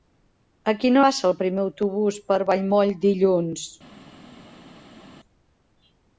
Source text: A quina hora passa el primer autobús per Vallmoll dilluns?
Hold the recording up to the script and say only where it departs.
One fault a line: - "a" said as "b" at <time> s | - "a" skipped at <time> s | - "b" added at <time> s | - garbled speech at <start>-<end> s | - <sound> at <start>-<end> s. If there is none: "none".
- "hora" skipped at 1.0 s